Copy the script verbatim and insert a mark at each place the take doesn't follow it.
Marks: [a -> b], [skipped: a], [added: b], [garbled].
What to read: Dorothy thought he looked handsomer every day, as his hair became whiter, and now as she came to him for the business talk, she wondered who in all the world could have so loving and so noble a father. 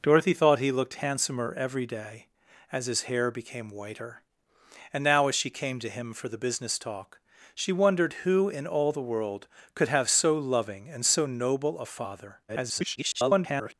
Dorothy thought he looked handsomer every day, as his hair became whiter, and now as she came to him for the business talk, she wondered who in all the world could have so loving and so noble a father. [garbled]